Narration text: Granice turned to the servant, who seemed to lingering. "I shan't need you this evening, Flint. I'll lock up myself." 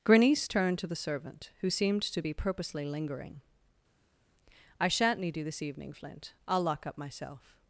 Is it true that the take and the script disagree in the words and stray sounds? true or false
true